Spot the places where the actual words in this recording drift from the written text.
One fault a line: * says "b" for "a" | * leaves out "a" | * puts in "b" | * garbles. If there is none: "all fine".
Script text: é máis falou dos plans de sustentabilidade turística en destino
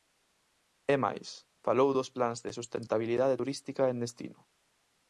all fine